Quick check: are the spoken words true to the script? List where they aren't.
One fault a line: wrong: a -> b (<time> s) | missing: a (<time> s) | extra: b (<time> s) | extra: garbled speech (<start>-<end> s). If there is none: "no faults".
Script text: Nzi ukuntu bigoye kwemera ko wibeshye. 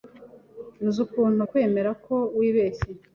missing: bigoye (1.4 s)